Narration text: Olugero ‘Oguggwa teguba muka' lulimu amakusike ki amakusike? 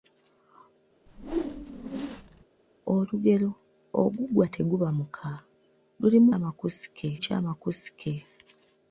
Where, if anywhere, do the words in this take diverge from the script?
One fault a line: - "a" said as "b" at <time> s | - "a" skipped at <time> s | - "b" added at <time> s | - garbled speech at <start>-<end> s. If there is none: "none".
none